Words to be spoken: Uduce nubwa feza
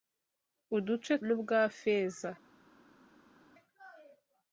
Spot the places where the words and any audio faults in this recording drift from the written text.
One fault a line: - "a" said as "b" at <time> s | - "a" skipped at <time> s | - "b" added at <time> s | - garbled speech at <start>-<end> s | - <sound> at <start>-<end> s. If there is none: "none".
none